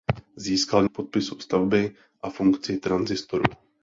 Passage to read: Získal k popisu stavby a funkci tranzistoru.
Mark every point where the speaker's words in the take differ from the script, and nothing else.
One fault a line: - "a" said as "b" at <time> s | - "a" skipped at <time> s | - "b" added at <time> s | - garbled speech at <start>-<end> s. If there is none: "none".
none